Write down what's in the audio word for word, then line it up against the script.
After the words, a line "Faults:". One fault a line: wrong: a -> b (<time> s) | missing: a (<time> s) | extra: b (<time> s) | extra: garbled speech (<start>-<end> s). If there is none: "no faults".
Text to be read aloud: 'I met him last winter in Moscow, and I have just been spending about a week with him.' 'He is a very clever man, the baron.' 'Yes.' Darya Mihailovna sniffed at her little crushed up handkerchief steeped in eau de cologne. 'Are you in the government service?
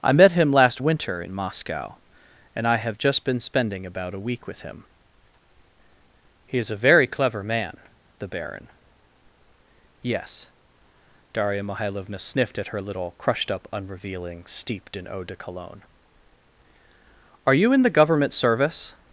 'I met him last winter in Moscow, and I have just been spending about a week with him.' 'He is a very clever man, the baron.' 'Yes.' Darya Mihailovna sniffed at her little crushed up unrevealing steeped in eau de cologne. 'Are you in the government service?
Faults:
wrong: handkerchief -> unrevealing (13.7 s)